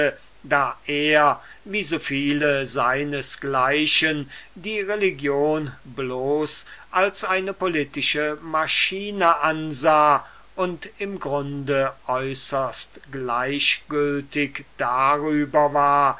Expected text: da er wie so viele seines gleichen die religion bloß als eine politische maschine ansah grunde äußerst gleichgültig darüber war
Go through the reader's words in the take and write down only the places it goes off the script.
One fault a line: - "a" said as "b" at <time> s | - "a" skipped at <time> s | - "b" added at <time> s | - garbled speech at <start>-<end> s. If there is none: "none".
- "und im" added at 10.5 s